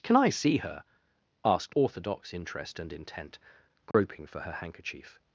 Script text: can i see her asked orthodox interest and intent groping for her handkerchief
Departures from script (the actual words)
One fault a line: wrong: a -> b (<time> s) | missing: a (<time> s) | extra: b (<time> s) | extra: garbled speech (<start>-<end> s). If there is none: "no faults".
no faults